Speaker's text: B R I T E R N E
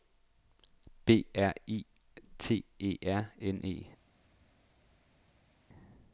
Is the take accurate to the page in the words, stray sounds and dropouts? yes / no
yes